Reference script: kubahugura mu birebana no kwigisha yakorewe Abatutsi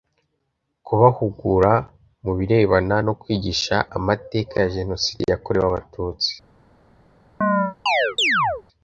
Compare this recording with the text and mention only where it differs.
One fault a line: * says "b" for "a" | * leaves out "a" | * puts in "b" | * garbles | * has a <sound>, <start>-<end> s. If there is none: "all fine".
* puts in "amateka ya Jenoside"
* has a chirp, 7.4-8.6 s